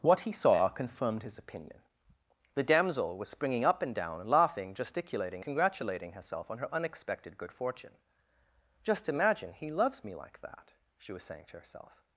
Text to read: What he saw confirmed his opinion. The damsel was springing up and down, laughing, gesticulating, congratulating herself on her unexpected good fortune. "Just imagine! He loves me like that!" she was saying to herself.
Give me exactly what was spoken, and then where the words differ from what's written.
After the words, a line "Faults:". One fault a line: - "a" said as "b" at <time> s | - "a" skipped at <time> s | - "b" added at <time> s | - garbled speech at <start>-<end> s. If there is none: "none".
What he saw confirmed his opinion. The damsel was springing up and down, laughing, gesticulating, congratulating herself on her unexpected good fortune. "Just imagine! He loves me like that!" she was saying to herself.
Faults:
none